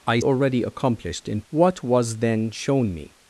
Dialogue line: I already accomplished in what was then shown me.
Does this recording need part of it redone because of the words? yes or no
no